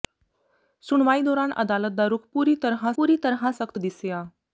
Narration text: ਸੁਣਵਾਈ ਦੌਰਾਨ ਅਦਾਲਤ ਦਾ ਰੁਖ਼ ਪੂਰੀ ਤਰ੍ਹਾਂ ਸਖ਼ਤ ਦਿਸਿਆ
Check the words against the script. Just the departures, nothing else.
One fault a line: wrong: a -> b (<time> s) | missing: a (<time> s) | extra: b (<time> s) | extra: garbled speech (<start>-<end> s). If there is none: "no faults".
extra: ਪੂਰੀ ਤਰ੍ਹਾਂ (3.0 s)